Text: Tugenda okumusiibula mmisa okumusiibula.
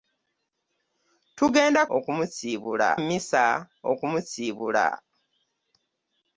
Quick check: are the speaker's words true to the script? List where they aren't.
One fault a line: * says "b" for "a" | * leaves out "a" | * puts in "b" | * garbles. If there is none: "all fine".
all fine